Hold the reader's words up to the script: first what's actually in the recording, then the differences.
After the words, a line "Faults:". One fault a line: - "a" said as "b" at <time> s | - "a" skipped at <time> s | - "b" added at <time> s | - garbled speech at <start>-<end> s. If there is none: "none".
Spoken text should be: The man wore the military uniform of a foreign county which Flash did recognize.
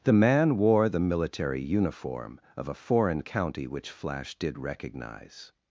The man wore the military uniform of a foreign county which Flash did recognize.
Faults:
none